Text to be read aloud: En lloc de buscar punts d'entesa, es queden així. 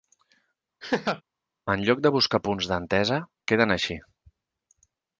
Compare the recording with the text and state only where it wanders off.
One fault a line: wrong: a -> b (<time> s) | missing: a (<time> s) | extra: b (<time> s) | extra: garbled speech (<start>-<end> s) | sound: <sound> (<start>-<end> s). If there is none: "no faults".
sound: laugh (0.8-1.2 s)
missing: es (3.2 s)